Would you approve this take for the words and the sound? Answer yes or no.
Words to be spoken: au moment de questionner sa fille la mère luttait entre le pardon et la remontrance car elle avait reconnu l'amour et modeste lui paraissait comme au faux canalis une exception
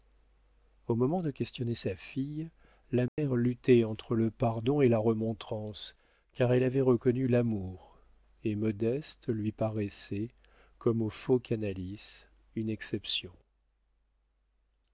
no